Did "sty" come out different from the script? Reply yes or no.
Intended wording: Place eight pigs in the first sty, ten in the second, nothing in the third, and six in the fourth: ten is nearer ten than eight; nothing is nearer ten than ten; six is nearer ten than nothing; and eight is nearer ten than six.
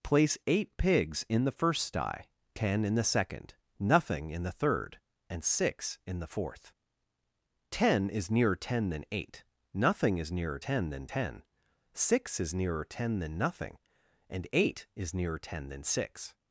no